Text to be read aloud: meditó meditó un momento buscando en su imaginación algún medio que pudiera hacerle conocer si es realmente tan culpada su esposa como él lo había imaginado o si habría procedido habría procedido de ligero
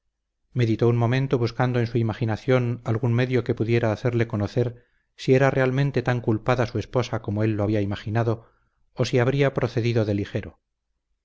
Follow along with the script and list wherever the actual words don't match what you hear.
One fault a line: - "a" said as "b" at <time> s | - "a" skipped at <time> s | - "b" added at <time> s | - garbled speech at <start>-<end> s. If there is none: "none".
- "meditó" skipped at 0.9 s
- "es" said as "era" at 5.3 s
- "habría procedido" skipped at 10.0 s